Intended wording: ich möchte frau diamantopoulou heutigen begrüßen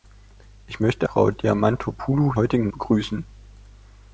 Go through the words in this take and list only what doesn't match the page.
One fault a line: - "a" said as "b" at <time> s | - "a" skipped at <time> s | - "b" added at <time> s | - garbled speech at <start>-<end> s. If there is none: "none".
none